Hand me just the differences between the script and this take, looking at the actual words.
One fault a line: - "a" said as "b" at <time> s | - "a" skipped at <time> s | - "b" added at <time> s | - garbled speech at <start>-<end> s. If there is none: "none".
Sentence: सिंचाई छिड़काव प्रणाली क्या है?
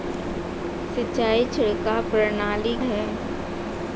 - "क्या" skipped at 2.8 s